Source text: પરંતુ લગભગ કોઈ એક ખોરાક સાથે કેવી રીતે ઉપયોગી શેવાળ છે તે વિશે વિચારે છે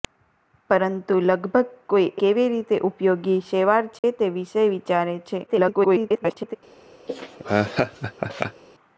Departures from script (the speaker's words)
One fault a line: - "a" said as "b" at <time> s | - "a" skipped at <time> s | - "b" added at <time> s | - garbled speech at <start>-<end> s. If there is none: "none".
- "એક ખોરાક સાથે" skipped at 2.1 s
- garbled speech at 5.5-6.6 s